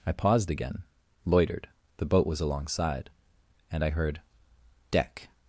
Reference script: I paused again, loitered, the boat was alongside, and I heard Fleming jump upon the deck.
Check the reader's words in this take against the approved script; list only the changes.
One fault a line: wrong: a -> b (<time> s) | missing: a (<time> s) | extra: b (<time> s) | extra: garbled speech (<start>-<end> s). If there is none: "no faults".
missing: Fleming jump upon the (4.2 s)